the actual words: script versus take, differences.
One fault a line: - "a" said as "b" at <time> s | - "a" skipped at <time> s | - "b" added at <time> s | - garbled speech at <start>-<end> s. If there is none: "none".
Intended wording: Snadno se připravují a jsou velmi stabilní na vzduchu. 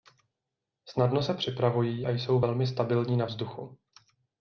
none